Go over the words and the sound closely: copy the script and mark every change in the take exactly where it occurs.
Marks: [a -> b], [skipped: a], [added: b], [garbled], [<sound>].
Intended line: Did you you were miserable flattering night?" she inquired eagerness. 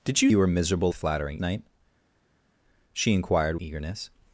Did you you were miserable flattering night?" she inquired eagerness.